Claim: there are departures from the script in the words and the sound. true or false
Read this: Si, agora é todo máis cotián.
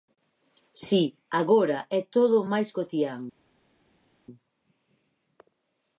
false